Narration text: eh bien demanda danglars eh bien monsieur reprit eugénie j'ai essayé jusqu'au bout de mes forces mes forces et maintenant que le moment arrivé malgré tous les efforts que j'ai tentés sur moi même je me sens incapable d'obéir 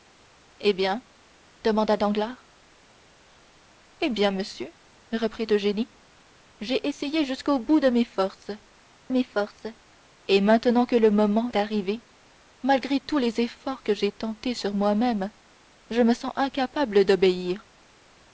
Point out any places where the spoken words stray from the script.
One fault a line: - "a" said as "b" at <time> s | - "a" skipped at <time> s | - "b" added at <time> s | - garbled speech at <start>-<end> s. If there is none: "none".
none